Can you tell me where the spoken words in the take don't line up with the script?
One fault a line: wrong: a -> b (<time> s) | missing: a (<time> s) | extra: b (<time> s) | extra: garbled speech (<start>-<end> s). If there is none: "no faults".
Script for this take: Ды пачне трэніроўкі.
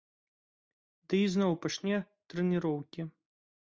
extra: ізноў (1.3 s)